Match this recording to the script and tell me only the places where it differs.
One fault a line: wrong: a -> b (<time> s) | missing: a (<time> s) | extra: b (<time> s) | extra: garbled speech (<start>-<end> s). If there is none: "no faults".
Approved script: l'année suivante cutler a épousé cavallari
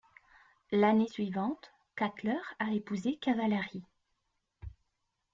no faults